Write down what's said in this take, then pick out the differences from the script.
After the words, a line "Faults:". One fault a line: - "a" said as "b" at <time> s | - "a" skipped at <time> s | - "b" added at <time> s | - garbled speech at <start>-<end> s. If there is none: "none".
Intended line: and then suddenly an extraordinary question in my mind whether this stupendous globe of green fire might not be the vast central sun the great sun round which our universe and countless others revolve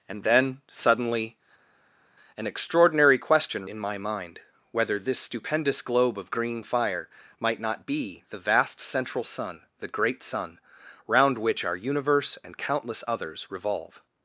and then suddenly an extraordinary question in my mind whether this stupendous globe of green fire might not be the vast central sun the great sun round which our universe and countless others revolve
Faults:
none